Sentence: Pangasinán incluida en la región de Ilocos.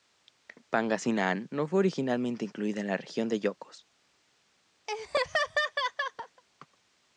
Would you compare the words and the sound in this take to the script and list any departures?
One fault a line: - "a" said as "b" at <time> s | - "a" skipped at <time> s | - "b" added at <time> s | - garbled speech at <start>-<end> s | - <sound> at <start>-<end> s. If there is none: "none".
- "no fue originalmente" added at 1.5 s
- laugh at 4.9-6.4 s